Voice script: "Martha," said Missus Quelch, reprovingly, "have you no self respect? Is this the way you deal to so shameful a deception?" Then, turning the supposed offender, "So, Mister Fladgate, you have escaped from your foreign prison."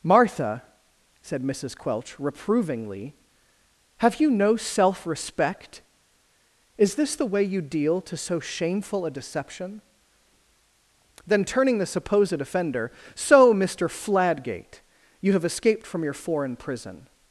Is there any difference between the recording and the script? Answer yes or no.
no